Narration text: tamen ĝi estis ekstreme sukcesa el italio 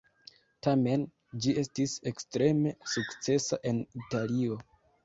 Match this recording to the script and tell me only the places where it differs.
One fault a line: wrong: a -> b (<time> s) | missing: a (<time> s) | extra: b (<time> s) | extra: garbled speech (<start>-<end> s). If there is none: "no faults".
wrong: el -> en (3.7 s)